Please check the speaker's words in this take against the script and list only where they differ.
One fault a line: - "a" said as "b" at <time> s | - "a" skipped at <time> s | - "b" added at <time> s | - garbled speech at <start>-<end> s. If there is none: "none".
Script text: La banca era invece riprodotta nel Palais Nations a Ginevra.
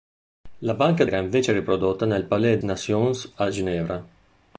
none